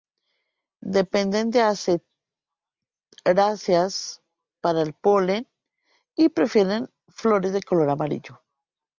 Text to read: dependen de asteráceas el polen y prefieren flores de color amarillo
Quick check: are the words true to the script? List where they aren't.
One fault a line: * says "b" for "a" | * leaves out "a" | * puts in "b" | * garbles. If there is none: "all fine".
* puts in "para"